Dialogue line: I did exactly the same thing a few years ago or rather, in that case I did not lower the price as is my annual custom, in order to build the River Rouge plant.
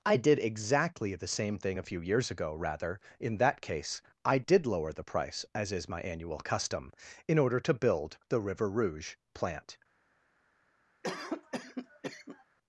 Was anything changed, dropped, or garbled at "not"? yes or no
yes